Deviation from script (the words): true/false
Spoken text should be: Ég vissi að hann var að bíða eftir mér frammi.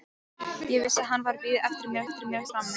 true